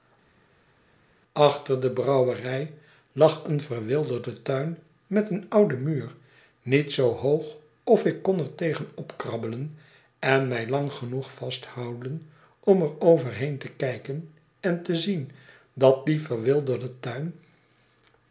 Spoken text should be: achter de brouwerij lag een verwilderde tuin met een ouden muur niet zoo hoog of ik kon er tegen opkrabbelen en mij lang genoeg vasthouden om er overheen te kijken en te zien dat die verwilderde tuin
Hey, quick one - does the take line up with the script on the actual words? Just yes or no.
yes